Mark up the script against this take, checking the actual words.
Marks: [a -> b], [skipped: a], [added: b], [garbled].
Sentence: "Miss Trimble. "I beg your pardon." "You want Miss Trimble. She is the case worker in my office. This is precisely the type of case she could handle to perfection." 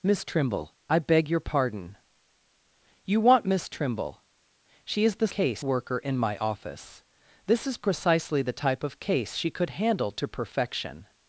"Miss Trimble. "I beg your pardon." "You want Miss Trimble. She is the case worker in my office. This is precisely the type of case she could handle to perfection."